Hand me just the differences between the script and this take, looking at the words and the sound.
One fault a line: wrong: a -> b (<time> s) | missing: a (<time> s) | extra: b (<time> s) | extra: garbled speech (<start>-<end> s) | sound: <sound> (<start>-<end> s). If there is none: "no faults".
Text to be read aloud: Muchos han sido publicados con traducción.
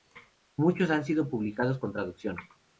no faults